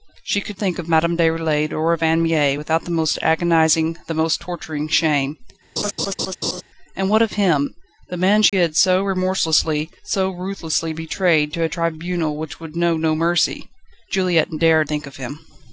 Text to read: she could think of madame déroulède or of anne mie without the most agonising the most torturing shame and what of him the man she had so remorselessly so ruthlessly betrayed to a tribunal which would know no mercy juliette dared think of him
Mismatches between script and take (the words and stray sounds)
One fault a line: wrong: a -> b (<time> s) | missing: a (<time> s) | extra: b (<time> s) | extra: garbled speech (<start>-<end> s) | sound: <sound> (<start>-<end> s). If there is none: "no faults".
sound: laugh (5.8-6.6 s)
sound: dropout (8.5-8.5 s)